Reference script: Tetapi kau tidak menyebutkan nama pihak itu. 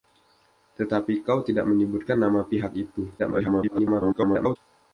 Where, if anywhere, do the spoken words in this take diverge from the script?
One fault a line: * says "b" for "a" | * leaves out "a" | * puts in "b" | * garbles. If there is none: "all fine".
* garbles